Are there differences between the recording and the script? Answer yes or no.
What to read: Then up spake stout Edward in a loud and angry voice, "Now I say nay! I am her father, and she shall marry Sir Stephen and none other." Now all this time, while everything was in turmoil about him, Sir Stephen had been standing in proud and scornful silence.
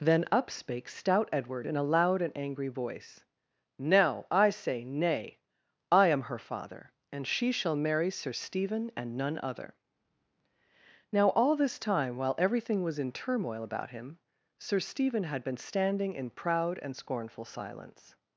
no